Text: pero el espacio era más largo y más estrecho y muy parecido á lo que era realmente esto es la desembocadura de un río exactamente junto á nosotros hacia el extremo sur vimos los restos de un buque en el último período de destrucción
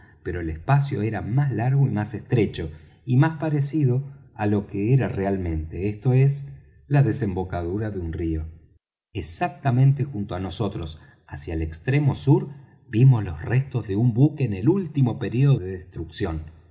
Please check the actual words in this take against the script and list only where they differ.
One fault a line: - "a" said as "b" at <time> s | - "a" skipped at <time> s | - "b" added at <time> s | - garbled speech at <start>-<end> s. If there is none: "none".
- "muy" said as "más" at 3.2 s